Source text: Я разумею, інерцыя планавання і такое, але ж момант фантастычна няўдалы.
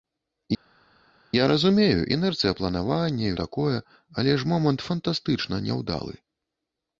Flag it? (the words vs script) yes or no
no